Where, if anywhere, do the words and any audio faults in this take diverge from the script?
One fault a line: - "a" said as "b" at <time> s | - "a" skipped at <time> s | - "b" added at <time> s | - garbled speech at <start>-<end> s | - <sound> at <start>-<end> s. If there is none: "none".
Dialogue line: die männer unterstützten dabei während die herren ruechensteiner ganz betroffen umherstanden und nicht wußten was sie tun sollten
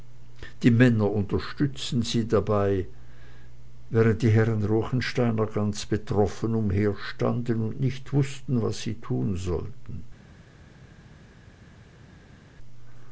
- "sie" added at 2.0 s